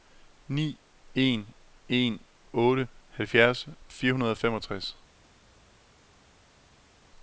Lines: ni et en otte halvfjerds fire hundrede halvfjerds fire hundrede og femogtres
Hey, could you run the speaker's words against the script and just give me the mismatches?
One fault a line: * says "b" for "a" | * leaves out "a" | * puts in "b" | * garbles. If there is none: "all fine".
* says "en" for "et"
* leaves out "halvfjerds fire hundrede"